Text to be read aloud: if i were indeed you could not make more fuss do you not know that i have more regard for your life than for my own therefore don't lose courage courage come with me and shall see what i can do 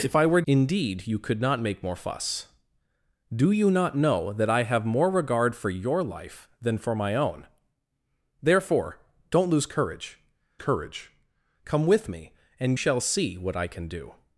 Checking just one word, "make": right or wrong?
right